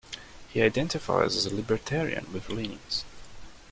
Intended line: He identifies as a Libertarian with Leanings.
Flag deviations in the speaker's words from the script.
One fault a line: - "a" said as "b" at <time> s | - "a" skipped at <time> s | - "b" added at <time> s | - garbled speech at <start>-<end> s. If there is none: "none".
none